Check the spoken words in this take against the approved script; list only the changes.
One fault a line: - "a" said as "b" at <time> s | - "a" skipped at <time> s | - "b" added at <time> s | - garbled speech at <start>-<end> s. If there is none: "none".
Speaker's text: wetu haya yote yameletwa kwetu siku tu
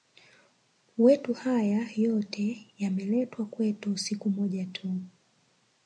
- "moja" added at 4.3 s